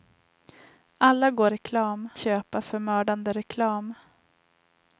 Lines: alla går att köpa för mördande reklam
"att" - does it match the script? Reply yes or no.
no